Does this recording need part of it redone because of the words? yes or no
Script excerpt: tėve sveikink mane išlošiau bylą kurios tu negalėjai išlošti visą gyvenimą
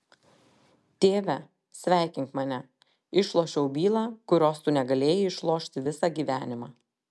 no